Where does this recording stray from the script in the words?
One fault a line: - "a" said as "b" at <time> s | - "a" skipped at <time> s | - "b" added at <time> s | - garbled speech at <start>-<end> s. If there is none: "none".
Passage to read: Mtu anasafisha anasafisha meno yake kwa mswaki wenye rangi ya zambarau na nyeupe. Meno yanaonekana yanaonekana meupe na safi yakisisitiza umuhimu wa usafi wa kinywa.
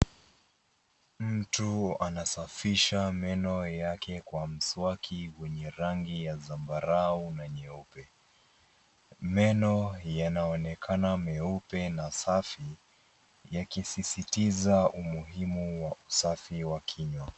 - "anasafisha" skipped at 3.1 s
- "yanaonekana" skipped at 11.2 s